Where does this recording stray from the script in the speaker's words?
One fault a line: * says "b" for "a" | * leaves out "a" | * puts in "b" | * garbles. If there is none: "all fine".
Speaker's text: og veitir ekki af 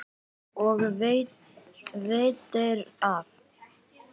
* leaves out "ekki"